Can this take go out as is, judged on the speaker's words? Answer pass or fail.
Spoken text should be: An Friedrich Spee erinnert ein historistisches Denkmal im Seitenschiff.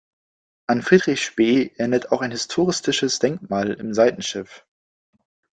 fail